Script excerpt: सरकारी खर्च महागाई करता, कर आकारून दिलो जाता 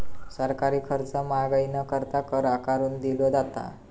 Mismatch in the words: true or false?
true